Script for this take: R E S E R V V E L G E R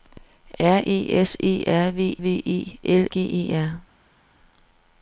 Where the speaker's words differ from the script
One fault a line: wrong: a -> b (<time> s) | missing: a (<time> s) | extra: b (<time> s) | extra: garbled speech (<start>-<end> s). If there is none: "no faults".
no faults